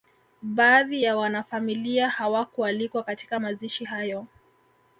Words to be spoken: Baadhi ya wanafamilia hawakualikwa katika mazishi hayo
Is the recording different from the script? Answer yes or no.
no